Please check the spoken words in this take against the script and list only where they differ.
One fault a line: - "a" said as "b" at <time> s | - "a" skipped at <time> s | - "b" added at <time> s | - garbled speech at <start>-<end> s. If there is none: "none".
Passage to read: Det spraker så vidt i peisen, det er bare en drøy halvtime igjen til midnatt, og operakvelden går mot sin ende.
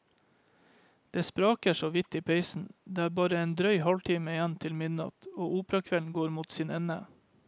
none